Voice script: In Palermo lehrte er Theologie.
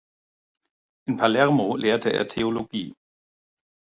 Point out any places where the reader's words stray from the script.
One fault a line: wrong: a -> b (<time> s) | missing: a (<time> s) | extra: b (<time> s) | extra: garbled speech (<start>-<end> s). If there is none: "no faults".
no faults